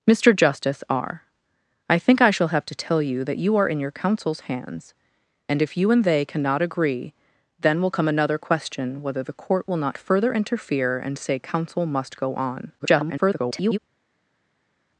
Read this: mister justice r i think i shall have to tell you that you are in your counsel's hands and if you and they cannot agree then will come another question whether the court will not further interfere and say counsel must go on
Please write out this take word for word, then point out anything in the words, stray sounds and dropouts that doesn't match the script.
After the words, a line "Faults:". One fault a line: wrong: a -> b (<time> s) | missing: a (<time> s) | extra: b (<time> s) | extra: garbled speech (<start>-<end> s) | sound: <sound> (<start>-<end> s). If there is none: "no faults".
mister justice r i think i shall have to tell you that you are in your counsel's hands and if you and they cannot agree then will come another question whether the court will not further interfere and say counsel must go on [garbled]
Faults:
extra: garbled speech (12.8-13.8 s)